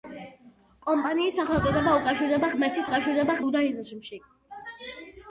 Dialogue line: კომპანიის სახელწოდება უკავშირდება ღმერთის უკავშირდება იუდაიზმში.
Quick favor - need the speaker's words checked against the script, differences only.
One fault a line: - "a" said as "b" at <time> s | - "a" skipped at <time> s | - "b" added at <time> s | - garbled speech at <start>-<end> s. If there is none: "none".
none